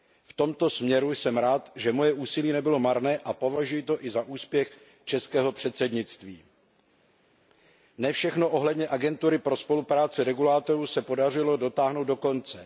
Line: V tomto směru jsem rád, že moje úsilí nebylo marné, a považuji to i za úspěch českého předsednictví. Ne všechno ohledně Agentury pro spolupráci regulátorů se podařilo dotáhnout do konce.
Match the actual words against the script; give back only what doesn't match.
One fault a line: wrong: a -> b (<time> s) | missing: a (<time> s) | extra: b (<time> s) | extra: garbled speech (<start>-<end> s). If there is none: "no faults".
no faults